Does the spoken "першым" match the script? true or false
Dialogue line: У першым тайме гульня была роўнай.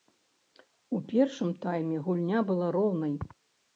true